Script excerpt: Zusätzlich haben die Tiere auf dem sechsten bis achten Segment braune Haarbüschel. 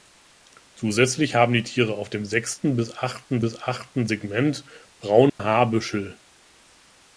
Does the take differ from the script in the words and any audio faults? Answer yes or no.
yes